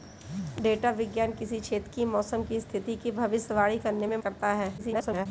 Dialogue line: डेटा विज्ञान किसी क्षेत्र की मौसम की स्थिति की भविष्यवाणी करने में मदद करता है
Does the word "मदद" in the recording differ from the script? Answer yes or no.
yes